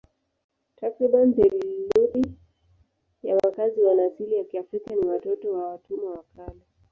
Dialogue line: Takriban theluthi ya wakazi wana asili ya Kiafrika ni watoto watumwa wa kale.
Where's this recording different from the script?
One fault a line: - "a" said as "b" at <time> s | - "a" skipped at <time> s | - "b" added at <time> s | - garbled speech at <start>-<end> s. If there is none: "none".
- "wa" added at 5.5 s